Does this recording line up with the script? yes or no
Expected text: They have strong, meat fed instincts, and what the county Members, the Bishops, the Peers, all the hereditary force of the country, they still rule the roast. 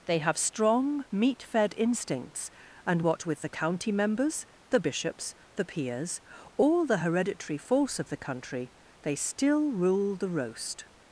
no